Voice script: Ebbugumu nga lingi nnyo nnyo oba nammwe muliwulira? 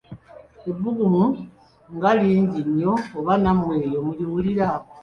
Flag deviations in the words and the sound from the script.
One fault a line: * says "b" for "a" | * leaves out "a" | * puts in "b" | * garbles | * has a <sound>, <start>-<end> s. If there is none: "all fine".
* leaves out "nnyo"
* puts in "eyo"